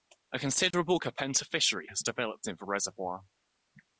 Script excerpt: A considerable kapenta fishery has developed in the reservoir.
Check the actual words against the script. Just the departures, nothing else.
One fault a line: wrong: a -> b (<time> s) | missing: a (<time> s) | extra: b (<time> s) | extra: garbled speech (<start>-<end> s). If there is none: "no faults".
no faults